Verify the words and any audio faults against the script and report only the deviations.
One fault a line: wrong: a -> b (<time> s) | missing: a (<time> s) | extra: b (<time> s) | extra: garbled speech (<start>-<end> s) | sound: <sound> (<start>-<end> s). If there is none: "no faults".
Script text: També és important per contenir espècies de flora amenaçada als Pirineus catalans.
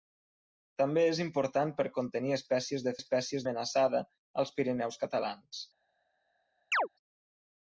wrong: flora -> espècies (3.0 s)
sound: chirp (6.7-6.9 s)